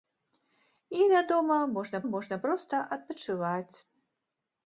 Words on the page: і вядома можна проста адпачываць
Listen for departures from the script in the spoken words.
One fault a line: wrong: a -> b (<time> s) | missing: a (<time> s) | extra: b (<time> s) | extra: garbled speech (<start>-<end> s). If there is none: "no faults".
extra: можна (2.1 s)